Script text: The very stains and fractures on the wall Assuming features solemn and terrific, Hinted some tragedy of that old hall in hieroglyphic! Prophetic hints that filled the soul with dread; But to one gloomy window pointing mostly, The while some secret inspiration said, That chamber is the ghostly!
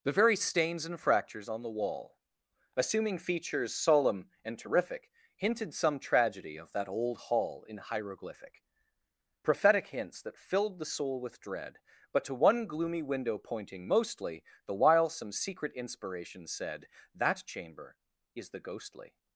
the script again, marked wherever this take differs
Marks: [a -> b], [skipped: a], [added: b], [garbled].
The very stains and fractures on the wall Assuming features solemn and terrific, Hinted some tragedy of that old hall in hieroglyphic! Prophetic hints that filled the soul with dread; But to one gloomy window pointing mostly, The while some secret inspiration said, That chamber is the ghostly!